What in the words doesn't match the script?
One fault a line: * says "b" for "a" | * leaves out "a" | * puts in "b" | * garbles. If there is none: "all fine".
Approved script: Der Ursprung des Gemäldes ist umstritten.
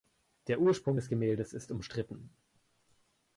all fine